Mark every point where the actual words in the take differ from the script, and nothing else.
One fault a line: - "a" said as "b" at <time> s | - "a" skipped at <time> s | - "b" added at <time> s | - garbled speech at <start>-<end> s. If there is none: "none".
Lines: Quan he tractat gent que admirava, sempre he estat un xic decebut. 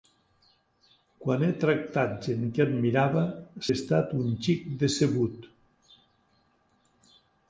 - "sempre" skipped at 3.3 s